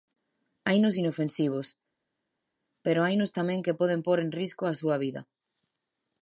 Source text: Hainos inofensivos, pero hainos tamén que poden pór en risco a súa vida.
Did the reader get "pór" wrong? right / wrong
right